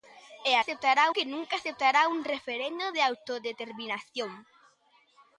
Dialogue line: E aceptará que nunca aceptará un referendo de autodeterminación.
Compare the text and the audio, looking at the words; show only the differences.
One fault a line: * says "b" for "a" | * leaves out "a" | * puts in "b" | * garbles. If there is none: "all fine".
all fine